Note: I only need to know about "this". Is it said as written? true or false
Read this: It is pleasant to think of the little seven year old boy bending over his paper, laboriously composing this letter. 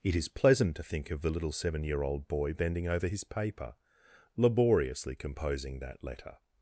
false